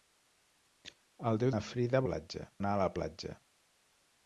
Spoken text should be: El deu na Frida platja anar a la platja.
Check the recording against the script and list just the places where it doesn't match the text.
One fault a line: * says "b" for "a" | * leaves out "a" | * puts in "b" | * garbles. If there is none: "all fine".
all fine